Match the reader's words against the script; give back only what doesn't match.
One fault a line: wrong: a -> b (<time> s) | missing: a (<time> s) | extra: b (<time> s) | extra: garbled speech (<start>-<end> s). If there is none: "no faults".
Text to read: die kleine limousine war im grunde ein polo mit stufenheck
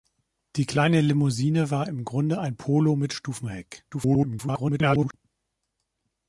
extra: garbled speech (3.9-5.1 s)